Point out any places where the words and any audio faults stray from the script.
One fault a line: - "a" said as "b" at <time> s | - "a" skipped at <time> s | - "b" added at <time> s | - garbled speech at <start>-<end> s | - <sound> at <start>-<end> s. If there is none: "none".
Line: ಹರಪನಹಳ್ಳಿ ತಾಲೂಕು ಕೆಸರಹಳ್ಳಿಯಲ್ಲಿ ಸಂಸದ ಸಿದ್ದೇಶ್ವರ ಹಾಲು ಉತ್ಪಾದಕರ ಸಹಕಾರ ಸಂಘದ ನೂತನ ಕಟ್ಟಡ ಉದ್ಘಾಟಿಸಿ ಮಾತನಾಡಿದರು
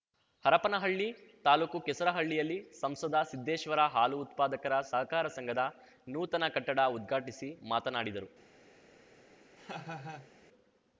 - laugh at 9.6-10.3 s